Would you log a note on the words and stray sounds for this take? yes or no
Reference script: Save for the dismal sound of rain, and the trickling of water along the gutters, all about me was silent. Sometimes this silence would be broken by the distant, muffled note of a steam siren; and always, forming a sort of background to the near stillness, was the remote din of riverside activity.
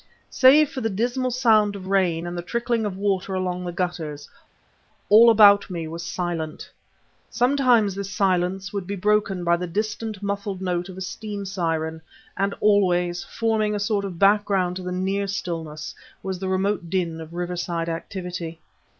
no